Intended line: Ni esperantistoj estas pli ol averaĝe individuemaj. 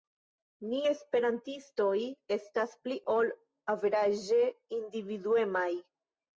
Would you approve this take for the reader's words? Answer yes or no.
yes